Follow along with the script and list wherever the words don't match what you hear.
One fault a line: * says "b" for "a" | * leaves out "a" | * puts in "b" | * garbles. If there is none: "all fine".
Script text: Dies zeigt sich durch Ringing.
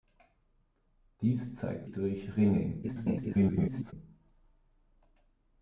* leaves out "sich"
* garbles